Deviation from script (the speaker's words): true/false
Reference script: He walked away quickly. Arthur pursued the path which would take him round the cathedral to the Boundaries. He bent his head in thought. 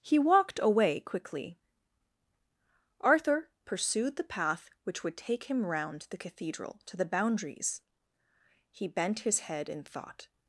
false